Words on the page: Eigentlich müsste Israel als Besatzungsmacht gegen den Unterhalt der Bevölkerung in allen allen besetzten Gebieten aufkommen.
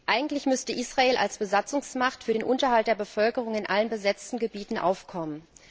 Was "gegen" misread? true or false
true